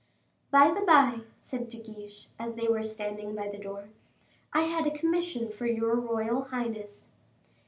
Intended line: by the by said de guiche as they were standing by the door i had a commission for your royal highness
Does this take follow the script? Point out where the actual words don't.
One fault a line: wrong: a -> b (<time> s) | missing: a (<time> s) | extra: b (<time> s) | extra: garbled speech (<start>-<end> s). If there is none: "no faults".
no faults